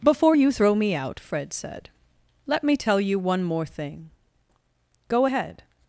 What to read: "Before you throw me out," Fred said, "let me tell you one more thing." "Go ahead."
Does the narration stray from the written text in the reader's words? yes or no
no